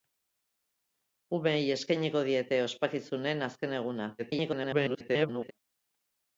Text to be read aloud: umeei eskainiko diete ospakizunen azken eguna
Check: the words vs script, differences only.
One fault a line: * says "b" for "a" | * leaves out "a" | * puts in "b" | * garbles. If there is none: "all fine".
* garbles